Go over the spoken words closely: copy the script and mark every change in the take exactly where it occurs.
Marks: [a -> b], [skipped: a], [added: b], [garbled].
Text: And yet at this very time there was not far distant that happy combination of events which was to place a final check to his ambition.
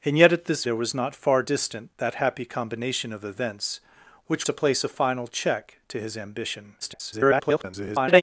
And yet at this [skipped: very time] there was not far distant that happy combination of events which [skipped: was] to place a final check to his ambition. [garbled]